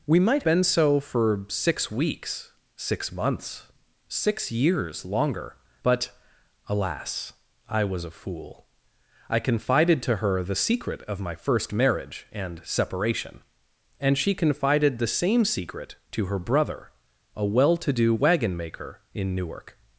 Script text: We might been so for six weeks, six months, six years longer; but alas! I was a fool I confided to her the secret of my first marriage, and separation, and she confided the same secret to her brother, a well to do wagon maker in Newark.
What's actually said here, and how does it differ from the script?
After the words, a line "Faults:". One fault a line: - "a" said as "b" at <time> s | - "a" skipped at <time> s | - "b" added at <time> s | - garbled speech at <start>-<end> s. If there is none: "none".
We might been so for six weeks, six months, six years longer; but alas! I was a fool I confided to her the secret of my first marriage, and separation, and she confided the same secret to her brother, a well to do wagon maker in Newark.
Faults:
none